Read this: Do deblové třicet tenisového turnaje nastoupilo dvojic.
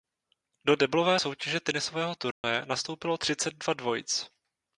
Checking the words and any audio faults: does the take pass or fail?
fail